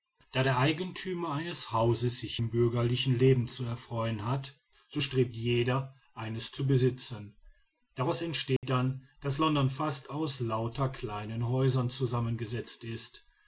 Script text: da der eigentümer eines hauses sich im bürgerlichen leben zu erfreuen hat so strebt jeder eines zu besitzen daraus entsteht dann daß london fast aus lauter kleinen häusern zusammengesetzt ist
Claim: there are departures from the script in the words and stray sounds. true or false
true